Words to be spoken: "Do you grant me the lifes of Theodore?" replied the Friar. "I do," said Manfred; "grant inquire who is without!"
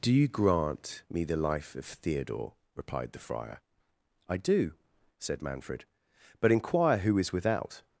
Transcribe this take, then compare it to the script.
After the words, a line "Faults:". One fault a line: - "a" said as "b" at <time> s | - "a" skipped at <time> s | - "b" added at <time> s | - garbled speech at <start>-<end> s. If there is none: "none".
"Do you grant me the life of Theodore?" replied the Friar. "I do," said Manfred; "but inquire who is without!"
Faults:
- "lifes" said as "life" at 1.4 s
- "grant" said as "but" at 6.4 s